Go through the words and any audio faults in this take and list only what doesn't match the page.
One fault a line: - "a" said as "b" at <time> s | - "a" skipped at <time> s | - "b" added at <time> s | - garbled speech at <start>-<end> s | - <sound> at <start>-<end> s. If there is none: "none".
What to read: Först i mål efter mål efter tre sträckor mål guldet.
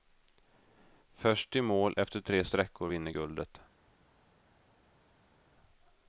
- "mål efter" skipped at 2.2 s
- "mål" said as "vinner" at 2.8 s